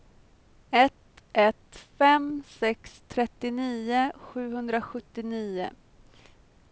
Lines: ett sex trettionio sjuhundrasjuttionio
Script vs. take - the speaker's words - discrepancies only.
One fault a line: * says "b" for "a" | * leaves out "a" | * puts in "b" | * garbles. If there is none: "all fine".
* puts in "ett fem"